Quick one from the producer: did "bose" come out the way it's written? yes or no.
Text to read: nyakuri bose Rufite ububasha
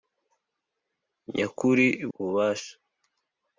no